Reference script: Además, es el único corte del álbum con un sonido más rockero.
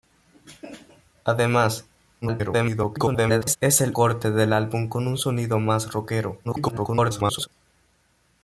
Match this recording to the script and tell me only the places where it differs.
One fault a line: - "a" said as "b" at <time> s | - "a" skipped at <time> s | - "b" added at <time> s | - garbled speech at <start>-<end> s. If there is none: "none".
- garbled speech at 2.2-3.6 s
- "único" skipped at 4.0 s
- garbled speech at 6.4-7.5 s